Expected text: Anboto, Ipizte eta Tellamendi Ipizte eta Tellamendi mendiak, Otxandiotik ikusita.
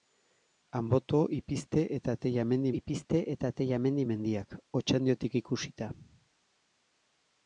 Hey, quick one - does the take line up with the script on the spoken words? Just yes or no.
yes